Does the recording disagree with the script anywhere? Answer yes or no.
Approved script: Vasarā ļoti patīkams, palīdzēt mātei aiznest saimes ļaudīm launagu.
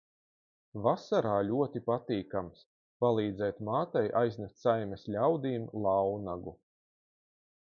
no